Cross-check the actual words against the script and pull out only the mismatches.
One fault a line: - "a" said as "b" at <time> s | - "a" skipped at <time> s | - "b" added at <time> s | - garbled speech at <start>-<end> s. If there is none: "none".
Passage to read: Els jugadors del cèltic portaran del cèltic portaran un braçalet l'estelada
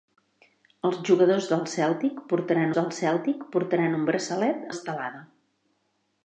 none